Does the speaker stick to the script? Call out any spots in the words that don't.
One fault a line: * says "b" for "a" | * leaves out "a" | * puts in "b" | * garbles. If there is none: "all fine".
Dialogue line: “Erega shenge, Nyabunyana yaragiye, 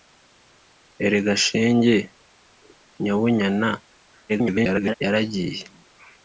* garbles